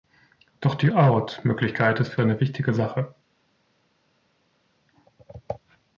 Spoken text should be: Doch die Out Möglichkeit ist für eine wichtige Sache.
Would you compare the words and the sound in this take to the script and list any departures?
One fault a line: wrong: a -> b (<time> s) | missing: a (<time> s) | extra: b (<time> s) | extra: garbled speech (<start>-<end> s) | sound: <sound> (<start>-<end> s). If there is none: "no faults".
no faults